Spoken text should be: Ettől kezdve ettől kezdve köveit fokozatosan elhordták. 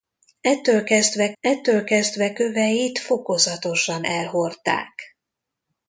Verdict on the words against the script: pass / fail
pass